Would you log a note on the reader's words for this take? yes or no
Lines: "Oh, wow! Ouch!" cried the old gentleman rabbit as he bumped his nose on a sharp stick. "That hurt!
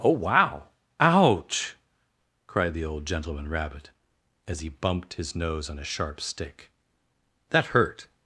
no